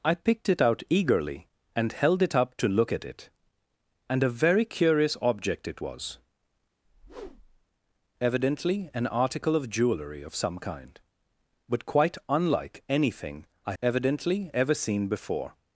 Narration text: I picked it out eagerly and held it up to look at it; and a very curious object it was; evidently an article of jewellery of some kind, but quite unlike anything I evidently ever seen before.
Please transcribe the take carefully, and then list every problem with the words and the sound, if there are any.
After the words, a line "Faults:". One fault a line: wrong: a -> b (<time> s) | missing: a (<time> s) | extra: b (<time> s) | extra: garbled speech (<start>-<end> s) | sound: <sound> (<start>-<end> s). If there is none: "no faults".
I picked it out eagerly and held it up to look at it; and a very curious object it was; evidently an article of jewellery of some kind, but quite unlike anything I evidently ever seen before.
Faults:
sound: whoosh (6.8-7.7 s)